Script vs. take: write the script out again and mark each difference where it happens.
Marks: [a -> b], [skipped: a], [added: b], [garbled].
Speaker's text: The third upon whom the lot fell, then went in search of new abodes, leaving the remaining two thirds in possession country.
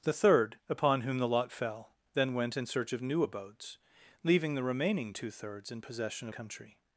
The third upon whom the lot fell, then went in search of new abodes, leaving the remaining two thirds in possession country.